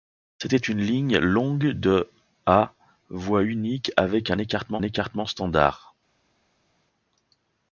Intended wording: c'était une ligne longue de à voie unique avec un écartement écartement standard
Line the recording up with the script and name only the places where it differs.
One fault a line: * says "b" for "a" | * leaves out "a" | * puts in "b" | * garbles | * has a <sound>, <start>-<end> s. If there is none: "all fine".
all fine